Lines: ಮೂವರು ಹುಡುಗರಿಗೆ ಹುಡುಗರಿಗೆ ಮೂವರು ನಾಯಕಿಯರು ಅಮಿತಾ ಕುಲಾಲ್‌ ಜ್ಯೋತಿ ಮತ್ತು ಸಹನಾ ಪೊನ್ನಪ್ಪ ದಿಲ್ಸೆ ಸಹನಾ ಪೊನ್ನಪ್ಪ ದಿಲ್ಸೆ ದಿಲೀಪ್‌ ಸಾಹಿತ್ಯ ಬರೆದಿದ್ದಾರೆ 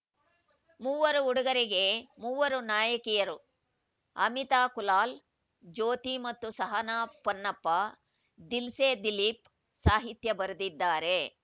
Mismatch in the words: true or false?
true